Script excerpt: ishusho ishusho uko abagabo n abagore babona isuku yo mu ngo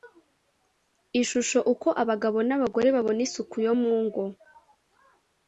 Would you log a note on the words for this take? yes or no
yes